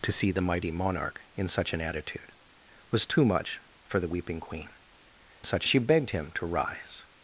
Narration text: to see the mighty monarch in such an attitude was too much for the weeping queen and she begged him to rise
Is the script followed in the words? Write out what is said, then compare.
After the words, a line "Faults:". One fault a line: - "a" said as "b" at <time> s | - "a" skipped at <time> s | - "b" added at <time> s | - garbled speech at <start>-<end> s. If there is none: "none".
to see the mighty monarch in such an attitude was too much for the weeping queen such she begged him to rise
Faults:
- "and" said as "such" at 5.4 s